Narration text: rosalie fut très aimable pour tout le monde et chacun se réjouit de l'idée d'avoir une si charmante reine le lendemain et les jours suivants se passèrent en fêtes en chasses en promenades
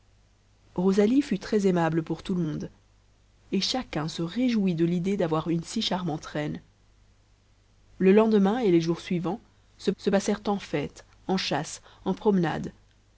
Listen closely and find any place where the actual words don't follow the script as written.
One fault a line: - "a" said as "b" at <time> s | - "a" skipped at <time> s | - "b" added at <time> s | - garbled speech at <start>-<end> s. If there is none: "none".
- "se" added at 10.0 s